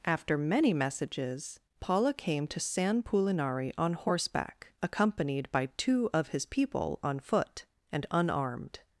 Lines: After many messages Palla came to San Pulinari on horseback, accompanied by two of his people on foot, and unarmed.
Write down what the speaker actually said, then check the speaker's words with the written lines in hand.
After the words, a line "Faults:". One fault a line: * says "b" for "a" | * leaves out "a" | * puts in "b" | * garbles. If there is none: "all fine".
After many messages Palla came to San Pulinari on horseback, accompanied by two of his people on foot, and unarmed.
Faults:
all fine